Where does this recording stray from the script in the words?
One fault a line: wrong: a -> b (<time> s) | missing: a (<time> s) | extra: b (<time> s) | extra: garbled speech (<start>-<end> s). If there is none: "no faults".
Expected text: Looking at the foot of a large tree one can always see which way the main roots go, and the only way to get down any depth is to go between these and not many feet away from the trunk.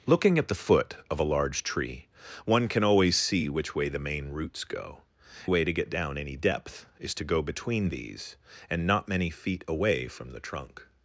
missing: and the only (5.0 s)